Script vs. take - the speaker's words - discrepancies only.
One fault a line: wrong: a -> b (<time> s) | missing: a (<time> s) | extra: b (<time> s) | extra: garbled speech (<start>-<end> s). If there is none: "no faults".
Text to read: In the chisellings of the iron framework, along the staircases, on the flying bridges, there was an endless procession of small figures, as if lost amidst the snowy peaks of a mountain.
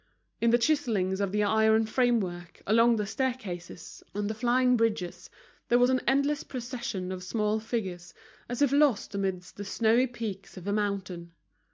no faults